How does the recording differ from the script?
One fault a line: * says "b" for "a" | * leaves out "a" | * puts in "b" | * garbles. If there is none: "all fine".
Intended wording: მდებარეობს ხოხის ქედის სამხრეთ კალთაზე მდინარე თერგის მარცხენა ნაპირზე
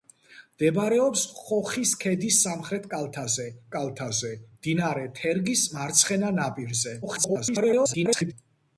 * puts in "კალთაზე"
* garbles